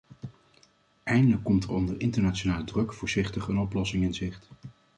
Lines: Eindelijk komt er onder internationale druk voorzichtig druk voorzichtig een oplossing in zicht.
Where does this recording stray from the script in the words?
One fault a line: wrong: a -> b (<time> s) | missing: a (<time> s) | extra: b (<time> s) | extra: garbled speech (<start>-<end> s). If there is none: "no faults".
missing: druk voorzichtig (3.5 s)